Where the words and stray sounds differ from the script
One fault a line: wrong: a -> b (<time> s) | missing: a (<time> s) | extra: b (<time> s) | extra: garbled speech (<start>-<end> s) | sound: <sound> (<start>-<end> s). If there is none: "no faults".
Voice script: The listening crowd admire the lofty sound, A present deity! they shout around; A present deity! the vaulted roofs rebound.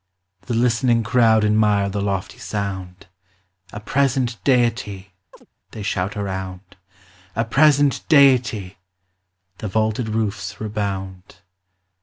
sound: chirp (5.3-5.5 s)